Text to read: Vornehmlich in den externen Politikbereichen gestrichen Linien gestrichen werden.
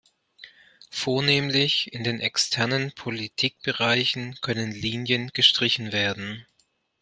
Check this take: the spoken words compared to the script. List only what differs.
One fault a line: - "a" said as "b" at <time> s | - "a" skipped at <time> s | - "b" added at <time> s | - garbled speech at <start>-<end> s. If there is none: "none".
- "gestrichen" said as "können" at 4.4 s